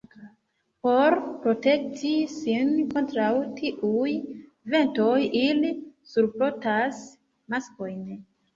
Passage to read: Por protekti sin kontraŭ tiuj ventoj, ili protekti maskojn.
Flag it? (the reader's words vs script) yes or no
yes